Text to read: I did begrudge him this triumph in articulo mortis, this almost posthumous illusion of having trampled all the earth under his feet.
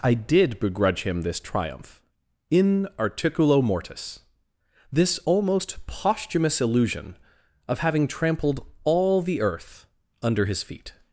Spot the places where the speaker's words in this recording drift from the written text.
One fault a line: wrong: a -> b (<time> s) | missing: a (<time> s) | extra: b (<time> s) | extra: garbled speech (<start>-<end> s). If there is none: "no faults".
no faults